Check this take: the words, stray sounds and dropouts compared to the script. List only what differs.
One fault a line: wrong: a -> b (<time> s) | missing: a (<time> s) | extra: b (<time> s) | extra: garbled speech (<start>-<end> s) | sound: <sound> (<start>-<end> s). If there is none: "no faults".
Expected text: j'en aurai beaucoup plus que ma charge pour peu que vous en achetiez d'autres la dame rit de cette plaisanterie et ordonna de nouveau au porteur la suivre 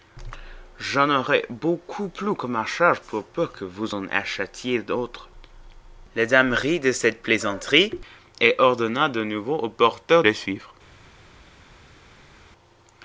no faults